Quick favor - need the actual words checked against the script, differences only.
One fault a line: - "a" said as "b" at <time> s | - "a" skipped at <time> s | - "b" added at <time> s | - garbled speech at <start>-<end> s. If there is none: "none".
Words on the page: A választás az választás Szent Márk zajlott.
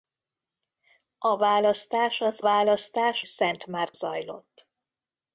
none